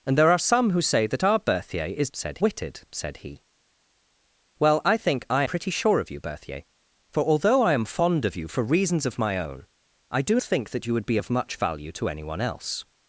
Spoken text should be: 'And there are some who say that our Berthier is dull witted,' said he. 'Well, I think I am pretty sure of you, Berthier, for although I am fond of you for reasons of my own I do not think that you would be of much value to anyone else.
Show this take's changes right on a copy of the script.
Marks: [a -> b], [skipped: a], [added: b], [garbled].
'And there are some who say that our Berthier is [dull -> said] witted,' said he. 'Well, I think I [skipped: am] pretty sure of you, Berthier, for although I am fond of you for reasons of my own I do [skipped: not] think that you would be of much value to anyone else.